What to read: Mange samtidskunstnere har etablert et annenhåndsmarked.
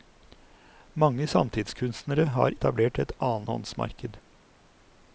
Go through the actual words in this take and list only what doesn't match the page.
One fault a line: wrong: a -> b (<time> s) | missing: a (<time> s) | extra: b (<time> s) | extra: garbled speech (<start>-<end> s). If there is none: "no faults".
no faults